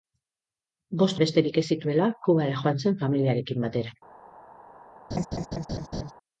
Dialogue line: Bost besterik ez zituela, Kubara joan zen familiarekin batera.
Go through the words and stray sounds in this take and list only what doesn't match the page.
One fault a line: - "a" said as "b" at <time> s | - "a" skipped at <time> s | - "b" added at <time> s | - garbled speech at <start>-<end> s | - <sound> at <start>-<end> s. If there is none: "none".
- laugh at 5.1-6.1 s